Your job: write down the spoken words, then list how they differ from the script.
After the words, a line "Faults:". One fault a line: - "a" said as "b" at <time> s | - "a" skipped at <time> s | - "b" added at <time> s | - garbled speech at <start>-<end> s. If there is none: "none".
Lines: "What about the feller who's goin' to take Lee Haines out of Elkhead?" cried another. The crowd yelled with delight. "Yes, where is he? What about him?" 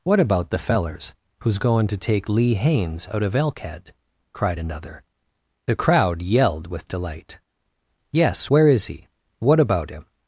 "What about the fellers who's goin' to take Lee Haines out of Elkhead?" cried another. The crowd yelled with delight. "Yes, where is he? What about him?"
Faults:
- "feller" said as "fellers" at 0.6 s